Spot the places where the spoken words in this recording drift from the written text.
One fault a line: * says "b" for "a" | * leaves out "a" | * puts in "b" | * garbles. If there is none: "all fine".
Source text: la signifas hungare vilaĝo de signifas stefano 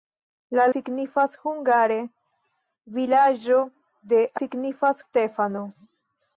all fine